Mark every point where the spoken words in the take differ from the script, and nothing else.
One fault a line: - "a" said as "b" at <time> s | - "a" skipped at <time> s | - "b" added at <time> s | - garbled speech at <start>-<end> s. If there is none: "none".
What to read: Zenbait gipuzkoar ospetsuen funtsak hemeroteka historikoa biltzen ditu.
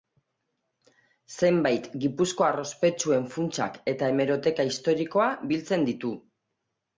- "eta" added at 3.9 s